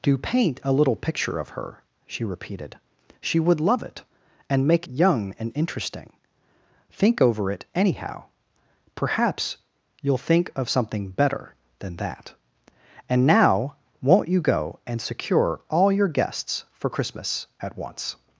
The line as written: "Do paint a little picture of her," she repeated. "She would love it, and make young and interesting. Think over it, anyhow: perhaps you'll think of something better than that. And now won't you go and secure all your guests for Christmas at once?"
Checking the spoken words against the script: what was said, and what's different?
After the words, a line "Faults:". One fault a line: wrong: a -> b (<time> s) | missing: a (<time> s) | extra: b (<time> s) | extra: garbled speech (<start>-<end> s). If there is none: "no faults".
"Do paint a little picture of her," she repeated. "She would love it, and make young and interesting. Think over it, anyhow: perhaps you'll think of something better than that. And now won't you go and secure all your guests for Christmas at once?"
Faults:
no faults